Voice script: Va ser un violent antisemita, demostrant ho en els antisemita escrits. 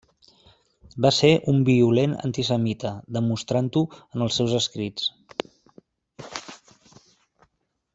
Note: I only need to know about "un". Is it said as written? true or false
true